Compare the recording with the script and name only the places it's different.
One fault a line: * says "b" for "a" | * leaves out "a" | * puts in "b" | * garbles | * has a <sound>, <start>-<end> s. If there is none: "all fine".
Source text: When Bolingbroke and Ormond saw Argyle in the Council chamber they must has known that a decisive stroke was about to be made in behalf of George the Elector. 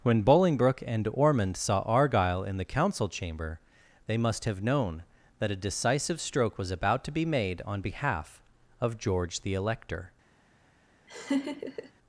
* says "have" for "has"
* says "on" for "in"
* has a laugh, 11.1-11.9 s